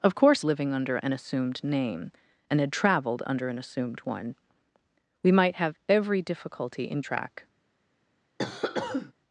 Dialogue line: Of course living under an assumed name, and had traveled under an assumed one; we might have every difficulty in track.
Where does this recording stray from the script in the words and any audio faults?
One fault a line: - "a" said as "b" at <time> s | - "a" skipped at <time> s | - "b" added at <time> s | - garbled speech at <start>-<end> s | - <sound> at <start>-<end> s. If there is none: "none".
- cough at 8.4-9.1 s